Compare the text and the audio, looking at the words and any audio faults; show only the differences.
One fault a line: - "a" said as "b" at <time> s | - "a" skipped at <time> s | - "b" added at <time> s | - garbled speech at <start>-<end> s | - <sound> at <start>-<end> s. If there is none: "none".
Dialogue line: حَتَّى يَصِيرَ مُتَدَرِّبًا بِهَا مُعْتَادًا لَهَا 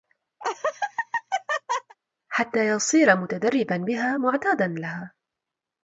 - laugh at 0.4-2.0 s